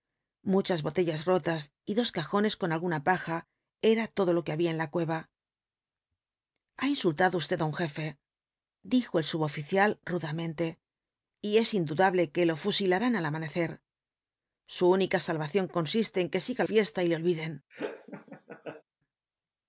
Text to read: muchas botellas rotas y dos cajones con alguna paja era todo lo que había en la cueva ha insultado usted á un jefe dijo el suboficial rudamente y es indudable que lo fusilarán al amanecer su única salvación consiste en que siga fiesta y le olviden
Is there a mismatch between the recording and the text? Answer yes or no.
no